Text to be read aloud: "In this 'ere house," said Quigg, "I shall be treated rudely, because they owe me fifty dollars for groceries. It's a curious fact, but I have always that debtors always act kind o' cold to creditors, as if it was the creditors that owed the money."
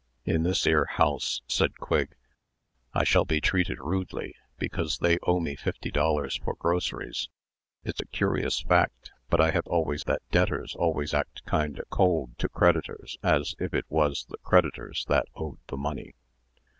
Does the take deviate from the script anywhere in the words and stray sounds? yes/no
no